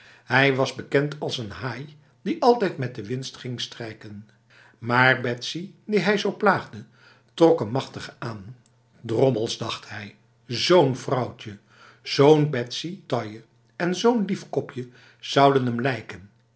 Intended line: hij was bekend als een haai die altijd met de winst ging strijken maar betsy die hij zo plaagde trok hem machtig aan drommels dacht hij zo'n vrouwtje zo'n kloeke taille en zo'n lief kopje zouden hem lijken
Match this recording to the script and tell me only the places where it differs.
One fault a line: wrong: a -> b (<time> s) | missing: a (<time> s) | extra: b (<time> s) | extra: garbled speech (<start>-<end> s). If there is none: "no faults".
wrong: kloeke -> betsy (12.5 s)